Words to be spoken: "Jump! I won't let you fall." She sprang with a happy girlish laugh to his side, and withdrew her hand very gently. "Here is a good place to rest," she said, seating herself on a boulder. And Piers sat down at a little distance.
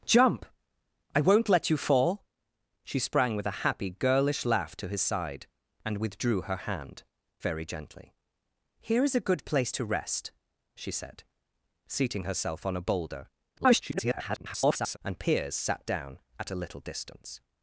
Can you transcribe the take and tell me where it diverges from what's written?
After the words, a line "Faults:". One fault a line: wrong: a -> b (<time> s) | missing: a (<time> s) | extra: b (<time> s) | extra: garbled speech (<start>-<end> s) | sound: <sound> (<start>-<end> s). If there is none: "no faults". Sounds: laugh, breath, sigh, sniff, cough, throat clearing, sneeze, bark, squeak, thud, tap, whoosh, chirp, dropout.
"Jump! I won't let you fall." She sprang with a happy girlish laugh to his side, and withdrew her hand very gently. "Here is a good place to rest," she said, seating herself on a boulder. [garbled] And Piers sat down at a little distance.
Faults:
extra: garbled speech (13.6-15.0 s)